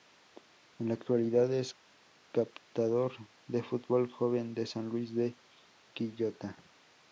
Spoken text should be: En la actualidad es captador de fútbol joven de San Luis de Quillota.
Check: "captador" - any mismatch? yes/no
no